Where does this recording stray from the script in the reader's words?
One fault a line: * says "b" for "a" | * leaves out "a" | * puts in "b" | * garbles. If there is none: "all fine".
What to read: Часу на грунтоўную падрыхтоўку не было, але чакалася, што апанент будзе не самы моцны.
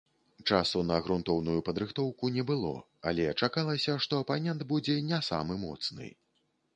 all fine